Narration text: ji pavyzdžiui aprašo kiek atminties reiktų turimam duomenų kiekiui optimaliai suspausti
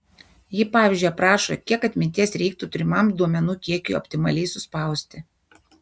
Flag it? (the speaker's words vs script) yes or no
no